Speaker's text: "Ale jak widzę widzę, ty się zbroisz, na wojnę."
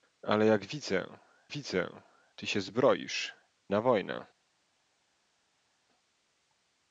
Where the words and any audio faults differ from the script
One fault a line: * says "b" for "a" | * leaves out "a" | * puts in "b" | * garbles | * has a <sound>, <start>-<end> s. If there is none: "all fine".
all fine